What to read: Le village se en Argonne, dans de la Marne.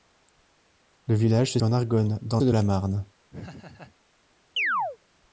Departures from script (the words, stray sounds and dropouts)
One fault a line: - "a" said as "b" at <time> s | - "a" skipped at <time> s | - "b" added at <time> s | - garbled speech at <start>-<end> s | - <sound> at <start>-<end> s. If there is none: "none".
- laugh at 3.3-4.0 s
- chirp at 4.6-5.0 s